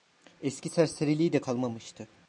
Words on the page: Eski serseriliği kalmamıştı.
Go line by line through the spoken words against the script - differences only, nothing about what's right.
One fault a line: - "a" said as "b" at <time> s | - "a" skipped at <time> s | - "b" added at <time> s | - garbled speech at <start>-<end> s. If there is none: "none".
- "de" added at 1.3 s